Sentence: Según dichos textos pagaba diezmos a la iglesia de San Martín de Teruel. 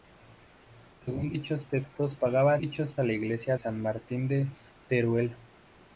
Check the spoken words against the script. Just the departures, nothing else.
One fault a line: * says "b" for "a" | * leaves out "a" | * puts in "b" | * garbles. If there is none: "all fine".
* says "dichos" for "diezmos"
* leaves out "de"